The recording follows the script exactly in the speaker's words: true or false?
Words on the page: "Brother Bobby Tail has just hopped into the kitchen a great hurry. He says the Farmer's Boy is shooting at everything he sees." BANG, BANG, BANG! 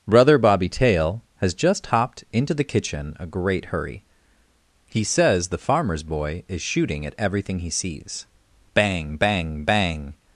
true